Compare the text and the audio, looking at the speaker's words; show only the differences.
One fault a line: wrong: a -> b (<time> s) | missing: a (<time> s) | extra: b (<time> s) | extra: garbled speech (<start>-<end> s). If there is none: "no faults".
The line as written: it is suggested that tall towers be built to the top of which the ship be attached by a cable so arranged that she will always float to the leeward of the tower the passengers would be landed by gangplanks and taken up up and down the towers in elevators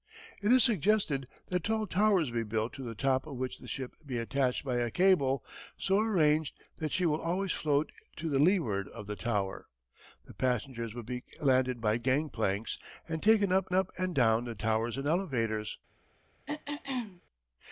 no faults